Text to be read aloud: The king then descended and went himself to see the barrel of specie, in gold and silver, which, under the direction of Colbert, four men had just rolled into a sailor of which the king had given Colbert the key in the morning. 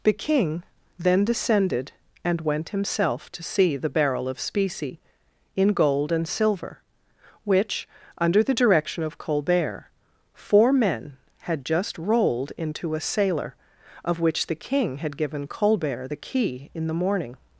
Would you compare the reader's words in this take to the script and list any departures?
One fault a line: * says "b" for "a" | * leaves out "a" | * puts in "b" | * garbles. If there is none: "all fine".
all fine